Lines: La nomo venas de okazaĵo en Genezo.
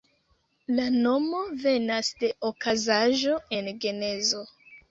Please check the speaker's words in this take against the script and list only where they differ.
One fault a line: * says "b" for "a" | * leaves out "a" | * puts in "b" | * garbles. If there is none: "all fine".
all fine